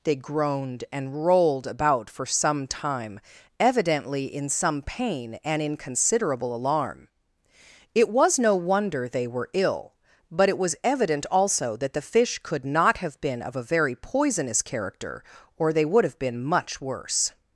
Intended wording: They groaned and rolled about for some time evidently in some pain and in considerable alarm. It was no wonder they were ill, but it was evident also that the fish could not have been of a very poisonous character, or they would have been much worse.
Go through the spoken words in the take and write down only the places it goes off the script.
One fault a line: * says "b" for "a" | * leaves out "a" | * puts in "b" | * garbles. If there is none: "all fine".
all fine